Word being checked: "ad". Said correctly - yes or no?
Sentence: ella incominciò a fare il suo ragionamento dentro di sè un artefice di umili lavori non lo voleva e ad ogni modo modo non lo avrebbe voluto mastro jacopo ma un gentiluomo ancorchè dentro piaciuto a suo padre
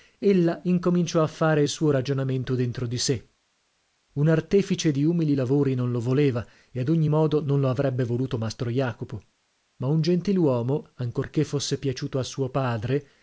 yes